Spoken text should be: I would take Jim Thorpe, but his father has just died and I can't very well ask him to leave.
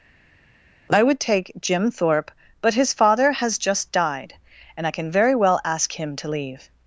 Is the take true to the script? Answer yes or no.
no